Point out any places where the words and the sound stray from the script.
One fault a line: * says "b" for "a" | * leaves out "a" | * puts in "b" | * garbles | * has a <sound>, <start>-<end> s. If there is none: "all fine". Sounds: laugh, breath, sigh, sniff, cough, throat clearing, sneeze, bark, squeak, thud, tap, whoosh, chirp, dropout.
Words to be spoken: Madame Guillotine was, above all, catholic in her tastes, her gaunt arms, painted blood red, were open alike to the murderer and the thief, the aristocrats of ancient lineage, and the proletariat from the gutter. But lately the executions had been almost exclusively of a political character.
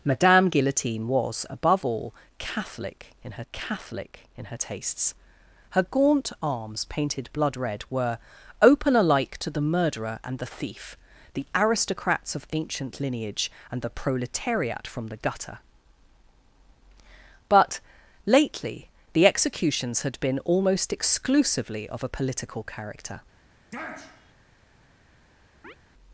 * puts in "catholic in her"
* has a sniff, 23.7-24.3 s
* has a chirp, 25.6-25.8 s